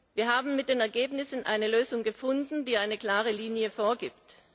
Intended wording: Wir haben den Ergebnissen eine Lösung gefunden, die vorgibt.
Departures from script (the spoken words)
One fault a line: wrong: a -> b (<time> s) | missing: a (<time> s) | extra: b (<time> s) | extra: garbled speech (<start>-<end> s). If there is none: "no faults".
extra: mit (0.6 s)
extra: eine klare Linie (2.8 s)